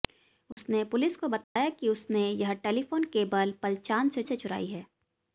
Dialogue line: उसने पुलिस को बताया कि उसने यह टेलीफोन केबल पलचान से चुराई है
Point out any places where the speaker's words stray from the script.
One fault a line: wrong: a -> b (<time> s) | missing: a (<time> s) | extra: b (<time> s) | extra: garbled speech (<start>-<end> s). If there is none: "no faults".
extra: से (4.2 s)